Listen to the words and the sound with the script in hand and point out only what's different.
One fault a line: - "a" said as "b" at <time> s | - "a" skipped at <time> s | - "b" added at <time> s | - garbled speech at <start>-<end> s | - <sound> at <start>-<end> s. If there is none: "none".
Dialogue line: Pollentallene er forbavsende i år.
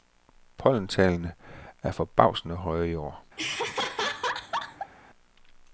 - "høje" added at 2.5 s
- laugh at 3.4-4.9 s